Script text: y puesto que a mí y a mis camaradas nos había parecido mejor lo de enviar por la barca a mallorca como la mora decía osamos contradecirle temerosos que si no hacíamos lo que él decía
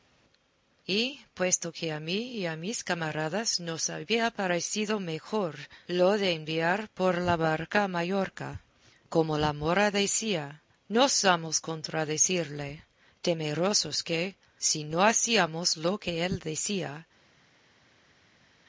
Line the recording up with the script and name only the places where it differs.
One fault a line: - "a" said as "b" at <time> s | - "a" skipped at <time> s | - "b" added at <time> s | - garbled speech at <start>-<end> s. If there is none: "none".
- "no" added at 10.9 s